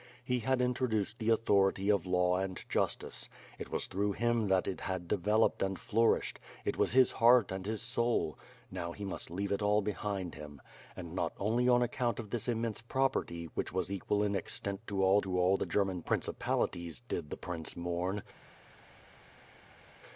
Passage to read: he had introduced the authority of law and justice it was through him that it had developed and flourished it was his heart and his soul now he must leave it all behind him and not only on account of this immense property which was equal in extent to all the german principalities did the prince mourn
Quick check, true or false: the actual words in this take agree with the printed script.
false